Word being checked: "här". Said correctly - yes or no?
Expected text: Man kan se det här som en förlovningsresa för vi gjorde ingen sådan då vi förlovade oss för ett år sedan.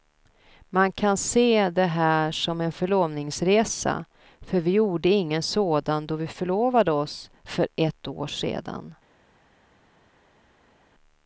yes